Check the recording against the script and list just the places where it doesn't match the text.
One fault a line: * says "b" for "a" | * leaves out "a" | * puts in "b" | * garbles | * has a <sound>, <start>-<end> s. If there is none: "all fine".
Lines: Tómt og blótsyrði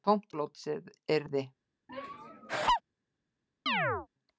* has a laugh, 1.9-2.8 s
* has a chirp, 3.7-4.1 s